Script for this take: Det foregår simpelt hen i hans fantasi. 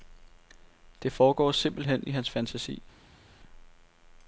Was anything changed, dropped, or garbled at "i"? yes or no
no